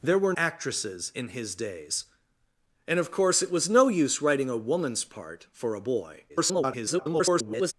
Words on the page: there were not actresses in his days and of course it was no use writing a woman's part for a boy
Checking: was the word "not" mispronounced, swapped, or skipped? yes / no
yes